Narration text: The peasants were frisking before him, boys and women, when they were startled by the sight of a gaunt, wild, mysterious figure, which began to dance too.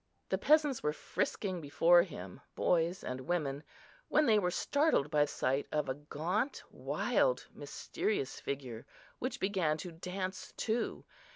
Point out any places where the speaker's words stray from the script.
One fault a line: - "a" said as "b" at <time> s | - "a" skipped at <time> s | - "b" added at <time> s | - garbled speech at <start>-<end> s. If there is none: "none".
- "the" skipped at 5.2 s